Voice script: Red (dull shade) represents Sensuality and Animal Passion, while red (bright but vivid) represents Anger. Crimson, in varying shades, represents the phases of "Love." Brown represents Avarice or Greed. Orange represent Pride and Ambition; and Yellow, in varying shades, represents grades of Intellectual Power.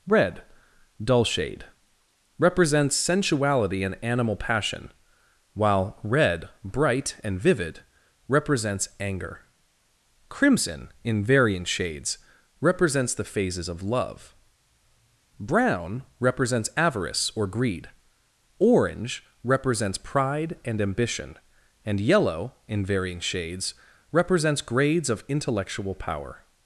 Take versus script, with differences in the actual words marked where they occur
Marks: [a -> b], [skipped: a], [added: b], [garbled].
Red (dull shade) represents Sensuality and Animal Passion, while red (bright [but -> and] vivid) represents Anger. Crimson, in varying shades, represents the phases of "Love." Brown represents Avarice or Greed. Orange [represent -> represents] Pride and Ambition; and Yellow, in varying shades, represents grades of Intellectual Power.